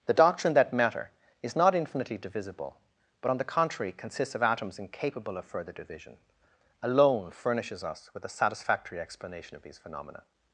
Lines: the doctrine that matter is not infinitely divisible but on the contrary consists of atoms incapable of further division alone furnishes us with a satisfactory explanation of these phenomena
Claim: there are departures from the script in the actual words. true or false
false